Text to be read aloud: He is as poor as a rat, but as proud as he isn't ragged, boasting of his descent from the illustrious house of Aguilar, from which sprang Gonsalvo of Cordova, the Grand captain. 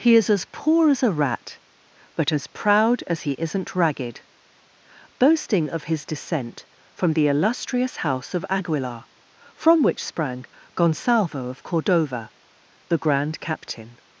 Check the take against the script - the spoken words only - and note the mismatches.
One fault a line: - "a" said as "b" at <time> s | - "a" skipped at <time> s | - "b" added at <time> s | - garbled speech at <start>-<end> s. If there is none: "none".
none